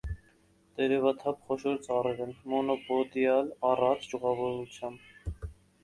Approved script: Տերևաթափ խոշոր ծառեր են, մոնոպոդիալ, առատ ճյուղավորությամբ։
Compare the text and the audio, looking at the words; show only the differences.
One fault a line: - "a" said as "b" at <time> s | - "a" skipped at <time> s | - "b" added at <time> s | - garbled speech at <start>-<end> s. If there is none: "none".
none